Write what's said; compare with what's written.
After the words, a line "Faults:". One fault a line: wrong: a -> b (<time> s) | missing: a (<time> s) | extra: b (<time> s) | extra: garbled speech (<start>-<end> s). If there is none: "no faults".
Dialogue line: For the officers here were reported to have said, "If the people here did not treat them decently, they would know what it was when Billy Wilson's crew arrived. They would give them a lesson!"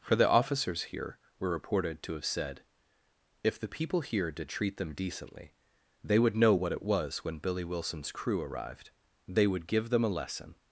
For the officers here were reported to have said, "If the people here did treat them decently, they would know what it was when Billy Wilson's crew arrived. They would give them a lesson!"
Faults:
missing: not (4.5 s)